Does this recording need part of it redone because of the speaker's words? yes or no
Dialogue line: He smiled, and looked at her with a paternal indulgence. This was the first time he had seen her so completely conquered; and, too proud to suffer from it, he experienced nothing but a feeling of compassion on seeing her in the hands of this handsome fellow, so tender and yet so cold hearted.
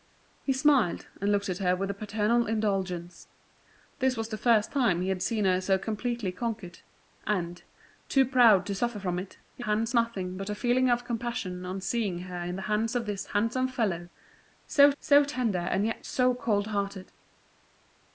yes